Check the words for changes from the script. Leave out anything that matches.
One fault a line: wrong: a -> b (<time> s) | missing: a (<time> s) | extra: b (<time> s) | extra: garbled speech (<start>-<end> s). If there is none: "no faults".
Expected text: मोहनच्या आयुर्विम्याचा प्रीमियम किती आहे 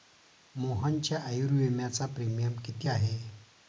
no faults